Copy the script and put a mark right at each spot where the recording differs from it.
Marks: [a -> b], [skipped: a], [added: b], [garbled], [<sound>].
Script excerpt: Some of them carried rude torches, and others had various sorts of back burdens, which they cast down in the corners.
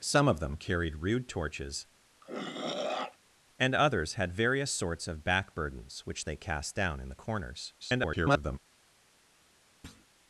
Some of them carried rude torches, [throat clearing] and others had various sorts of back burdens, which they cast down in the corners. [garbled] [thud]